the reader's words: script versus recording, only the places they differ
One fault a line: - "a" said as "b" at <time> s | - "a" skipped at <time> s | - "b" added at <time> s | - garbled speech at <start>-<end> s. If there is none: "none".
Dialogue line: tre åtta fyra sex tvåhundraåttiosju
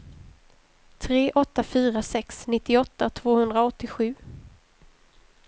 - "nittioåtta" added at 2.5 s